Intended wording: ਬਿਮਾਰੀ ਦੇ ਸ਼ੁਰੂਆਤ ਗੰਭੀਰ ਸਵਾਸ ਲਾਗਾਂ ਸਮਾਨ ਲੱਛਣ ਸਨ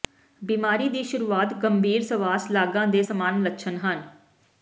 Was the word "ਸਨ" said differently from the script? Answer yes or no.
yes